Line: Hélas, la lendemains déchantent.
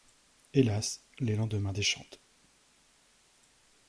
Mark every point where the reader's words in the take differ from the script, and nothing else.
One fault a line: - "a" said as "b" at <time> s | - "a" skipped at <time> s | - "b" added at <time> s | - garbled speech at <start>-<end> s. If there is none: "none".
- "la" said as "les" at 1.2 s